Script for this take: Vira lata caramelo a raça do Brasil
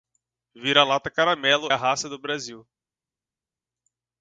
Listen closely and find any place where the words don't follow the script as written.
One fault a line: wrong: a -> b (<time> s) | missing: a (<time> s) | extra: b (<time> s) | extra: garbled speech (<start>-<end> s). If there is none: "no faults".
no faults